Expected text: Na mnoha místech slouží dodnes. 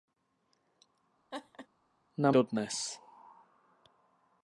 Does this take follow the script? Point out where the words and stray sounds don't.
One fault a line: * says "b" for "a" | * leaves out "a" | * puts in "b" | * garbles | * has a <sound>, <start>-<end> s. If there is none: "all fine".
* has a laugh, 1.3-1.7 s
* leaves out "mnoha místech slouží"